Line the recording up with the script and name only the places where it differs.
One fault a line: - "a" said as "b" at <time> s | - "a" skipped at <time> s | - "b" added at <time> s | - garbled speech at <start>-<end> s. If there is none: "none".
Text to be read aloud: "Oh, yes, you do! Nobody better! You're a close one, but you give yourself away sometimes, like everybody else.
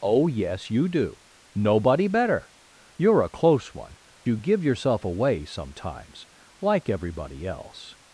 - "but" skipped at 4.0 s